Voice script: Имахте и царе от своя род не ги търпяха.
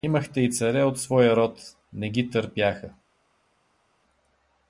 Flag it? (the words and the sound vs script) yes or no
no